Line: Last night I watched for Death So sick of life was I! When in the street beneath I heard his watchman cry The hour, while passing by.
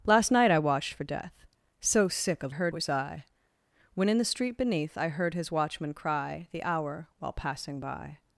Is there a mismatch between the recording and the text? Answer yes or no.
yes